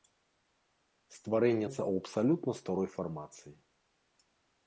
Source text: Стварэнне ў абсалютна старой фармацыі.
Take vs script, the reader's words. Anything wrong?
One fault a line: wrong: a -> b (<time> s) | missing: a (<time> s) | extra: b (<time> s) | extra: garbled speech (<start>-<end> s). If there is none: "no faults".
no faults